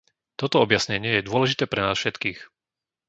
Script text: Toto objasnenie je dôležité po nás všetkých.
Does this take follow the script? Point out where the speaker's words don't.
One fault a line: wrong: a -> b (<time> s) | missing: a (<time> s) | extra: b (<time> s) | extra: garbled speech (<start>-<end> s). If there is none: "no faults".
wrong: po -> pre (1.7 s)